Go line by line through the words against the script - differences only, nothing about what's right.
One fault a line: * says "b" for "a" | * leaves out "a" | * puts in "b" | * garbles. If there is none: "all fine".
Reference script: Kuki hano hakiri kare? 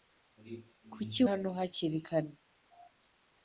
all fine